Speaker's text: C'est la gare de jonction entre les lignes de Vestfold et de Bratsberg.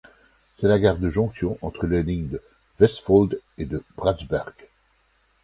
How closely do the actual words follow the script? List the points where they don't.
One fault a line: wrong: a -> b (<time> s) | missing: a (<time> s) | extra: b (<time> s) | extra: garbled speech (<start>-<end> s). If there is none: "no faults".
no faults